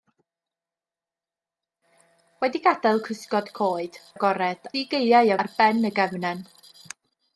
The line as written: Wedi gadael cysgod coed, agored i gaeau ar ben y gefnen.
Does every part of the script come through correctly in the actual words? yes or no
yes